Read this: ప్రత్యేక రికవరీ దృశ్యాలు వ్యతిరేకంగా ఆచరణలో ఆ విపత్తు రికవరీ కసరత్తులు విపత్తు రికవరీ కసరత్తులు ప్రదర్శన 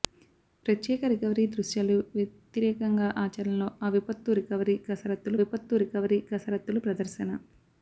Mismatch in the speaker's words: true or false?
false